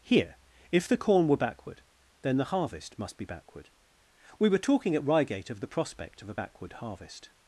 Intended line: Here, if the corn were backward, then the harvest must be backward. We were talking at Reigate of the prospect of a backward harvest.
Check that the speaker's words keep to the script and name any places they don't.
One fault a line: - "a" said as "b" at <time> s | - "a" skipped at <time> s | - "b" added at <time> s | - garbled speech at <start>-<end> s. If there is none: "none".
none